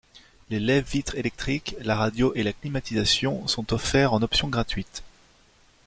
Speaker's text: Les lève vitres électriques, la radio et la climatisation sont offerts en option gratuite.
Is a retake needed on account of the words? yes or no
no